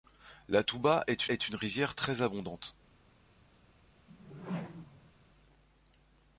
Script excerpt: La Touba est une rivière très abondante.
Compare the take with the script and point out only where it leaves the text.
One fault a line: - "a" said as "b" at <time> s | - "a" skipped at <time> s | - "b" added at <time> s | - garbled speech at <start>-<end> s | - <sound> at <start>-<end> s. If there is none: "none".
- "est" added at 1.3 s
- whoosh at 4.1-5.1 s